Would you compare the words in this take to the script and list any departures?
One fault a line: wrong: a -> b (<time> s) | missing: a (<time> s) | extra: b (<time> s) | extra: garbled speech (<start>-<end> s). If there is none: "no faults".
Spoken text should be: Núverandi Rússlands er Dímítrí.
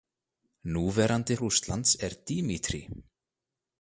no faults